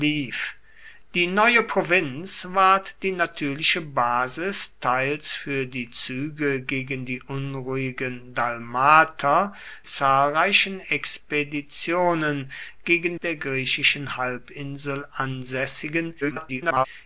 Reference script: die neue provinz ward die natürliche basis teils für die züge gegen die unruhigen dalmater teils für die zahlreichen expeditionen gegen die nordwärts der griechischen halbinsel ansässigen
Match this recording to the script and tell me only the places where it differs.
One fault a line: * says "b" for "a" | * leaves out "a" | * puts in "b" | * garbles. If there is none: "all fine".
* leaves out "teils für die"
* leaves out "die nordwärts"
* garbles